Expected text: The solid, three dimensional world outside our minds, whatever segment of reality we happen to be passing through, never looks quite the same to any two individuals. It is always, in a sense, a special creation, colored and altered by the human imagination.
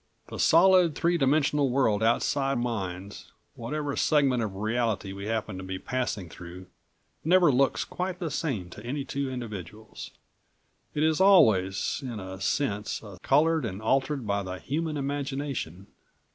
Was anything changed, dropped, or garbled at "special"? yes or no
yes